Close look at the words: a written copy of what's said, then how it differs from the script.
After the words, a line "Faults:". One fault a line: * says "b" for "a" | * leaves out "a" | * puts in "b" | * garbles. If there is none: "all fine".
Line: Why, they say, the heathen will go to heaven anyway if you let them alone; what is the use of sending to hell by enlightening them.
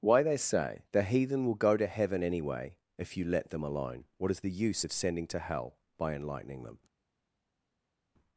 Why, they say, the heathen will go to heaven anyway if you let them alone; what is the use of sending to hell by enlightening them.
Faults:
all fine